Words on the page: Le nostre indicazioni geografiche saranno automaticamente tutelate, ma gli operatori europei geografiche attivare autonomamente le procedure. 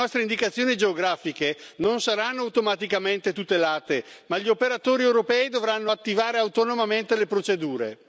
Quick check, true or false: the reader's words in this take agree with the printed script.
false